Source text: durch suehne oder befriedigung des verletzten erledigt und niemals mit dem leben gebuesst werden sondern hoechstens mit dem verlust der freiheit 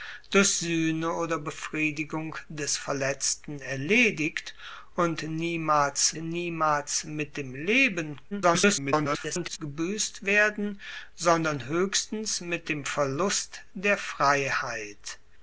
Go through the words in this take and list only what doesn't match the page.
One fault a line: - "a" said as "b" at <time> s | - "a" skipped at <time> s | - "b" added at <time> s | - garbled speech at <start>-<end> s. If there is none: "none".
- "niemals" added at 6.1 s
- garbled speech at 8.3-9.6 s